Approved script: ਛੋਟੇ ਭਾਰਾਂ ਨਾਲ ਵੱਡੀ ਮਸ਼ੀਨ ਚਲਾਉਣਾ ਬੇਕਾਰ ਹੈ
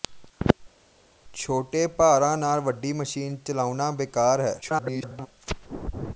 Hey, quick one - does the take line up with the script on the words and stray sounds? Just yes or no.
no